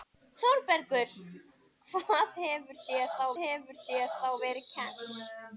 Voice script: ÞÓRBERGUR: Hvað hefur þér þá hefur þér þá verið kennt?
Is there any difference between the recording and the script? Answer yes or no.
no